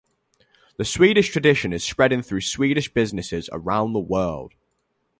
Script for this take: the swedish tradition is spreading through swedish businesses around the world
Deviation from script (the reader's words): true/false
false